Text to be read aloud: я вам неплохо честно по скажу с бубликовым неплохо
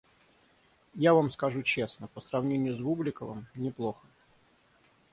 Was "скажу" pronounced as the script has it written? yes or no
no